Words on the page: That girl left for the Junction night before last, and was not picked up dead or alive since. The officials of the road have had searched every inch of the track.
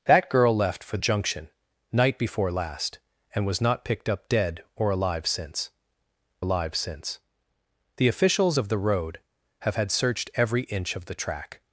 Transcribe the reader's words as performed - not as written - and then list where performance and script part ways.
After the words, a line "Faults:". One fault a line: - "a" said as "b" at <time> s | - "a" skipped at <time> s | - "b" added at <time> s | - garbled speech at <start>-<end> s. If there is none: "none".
That girl left for Junction night before last, and was not picked up dead or alive since alive since. The officials of the road have had searched every inch of the track.
Faults:
- "the" skipped at 1.0 s
- "alive since" added at 6.4 s